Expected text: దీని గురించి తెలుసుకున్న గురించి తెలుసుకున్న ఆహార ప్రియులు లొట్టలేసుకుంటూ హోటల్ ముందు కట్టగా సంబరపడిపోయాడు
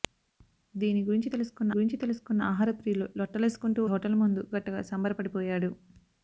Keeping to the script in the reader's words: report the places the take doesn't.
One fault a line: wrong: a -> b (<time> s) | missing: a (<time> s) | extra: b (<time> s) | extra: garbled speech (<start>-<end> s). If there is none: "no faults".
no faults